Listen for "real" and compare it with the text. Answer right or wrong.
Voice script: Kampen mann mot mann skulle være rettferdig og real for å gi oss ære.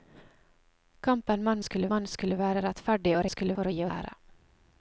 wrong